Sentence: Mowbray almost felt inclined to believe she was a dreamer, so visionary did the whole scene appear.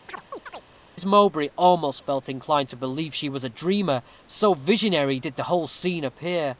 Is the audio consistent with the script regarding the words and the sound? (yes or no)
no